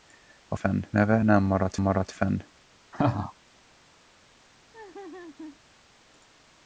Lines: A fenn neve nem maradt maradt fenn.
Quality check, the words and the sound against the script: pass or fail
fail